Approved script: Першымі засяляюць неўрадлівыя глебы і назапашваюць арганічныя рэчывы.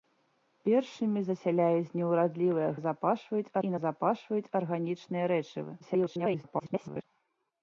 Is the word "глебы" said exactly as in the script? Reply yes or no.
no